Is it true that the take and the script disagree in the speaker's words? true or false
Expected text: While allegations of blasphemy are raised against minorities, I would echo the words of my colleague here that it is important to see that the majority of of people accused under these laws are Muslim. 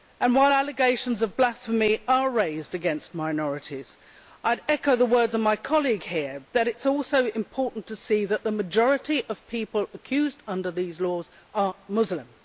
true